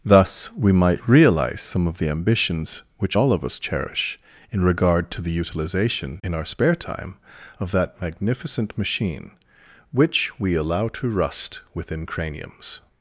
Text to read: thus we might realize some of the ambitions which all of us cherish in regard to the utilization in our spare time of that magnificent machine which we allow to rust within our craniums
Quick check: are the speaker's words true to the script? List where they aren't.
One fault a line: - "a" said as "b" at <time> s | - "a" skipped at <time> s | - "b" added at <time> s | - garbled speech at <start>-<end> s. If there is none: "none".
- "our" skipped at 12.0 s